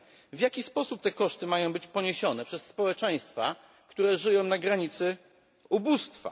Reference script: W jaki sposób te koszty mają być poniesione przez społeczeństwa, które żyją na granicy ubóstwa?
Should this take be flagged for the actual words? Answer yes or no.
no